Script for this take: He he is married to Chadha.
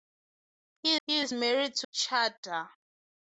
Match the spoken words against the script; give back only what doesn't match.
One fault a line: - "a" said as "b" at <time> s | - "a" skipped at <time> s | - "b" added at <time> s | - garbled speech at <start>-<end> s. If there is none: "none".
none